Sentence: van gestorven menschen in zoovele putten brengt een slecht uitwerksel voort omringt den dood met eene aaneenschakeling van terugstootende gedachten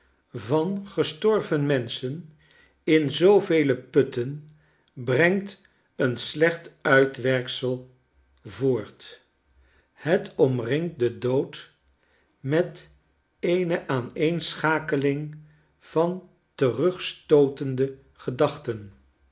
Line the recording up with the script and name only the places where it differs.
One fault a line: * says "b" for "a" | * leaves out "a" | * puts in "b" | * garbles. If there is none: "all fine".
* puts in "het"